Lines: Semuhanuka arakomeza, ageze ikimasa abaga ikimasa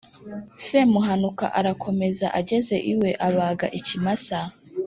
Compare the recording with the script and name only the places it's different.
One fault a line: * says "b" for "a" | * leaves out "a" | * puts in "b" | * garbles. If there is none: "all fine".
* says "iwe" for "ikimasa"